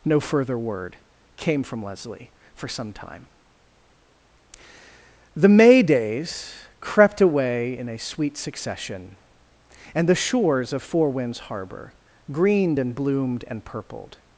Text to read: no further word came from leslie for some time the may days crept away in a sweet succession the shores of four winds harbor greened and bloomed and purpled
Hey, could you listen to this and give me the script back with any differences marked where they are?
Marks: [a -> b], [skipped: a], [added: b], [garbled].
no further word came from leslie for some time the may days crept away in a sweet succession [added: and] the shores of four winds harbor greened and bloomed and purpled